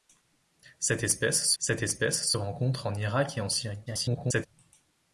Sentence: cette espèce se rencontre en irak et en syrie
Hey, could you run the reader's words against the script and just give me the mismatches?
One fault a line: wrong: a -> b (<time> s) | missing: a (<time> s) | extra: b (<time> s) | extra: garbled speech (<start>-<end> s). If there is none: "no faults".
extra: cette espèce (1.6 s)
extra: garbled speech (3.9-4.5 s)